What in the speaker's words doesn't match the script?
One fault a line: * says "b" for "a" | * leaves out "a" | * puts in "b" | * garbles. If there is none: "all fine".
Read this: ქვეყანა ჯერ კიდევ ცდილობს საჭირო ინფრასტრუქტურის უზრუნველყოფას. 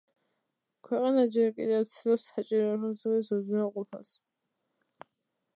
all fine